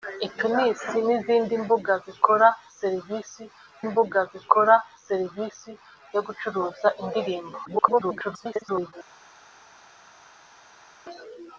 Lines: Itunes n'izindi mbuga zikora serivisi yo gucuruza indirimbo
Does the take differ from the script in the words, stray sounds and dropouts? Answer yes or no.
yes